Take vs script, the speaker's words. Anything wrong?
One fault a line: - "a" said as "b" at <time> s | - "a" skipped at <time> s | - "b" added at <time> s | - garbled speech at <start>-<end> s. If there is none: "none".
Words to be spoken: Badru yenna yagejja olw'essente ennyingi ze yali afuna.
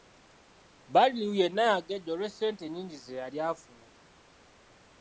none